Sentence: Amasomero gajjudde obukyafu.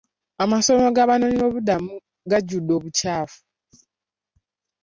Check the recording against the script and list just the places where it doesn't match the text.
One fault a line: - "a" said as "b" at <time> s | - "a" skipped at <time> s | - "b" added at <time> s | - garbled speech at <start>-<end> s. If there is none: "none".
- "g'abanoonyiboobubudamu" added at 0.9 s